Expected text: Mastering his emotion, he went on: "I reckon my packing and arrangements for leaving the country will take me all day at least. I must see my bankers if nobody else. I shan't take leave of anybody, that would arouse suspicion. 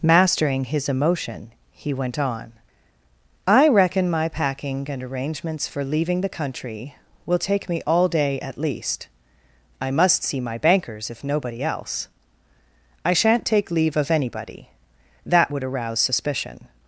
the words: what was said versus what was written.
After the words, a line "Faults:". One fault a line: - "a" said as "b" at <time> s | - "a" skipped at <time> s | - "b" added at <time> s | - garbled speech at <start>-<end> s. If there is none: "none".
Mastering his emotion, he went on: "I reckon my packing and arrangements for leaving the country will take me all day at least. I must see my bankers if nobody else. I shan't take leave of anybody, that would arouse suspicion.
Faults:
none